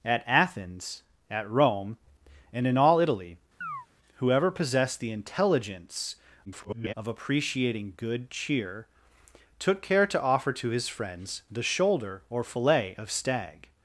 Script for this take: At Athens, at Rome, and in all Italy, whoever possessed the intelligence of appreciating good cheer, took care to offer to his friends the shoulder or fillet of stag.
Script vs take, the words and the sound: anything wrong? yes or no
yes